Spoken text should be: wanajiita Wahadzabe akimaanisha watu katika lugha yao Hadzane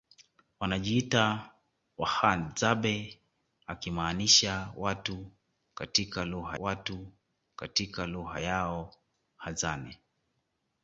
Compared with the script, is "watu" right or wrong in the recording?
right